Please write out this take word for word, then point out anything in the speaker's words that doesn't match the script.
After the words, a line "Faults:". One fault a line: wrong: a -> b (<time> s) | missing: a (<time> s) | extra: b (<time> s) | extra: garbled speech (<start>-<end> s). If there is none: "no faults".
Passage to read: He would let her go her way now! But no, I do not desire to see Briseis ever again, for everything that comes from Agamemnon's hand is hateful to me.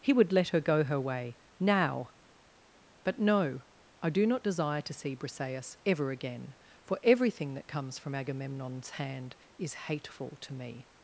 He would let her go her way now! But no, I do not desire to see Briseis ever again, for everything that comes from Agamemnon's hand is hateful to me.
Faults:
no faults